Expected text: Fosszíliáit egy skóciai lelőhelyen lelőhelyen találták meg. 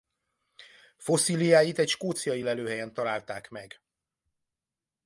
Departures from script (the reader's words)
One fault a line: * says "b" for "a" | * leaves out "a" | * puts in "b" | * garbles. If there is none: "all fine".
* leaves out "lelőhelyen"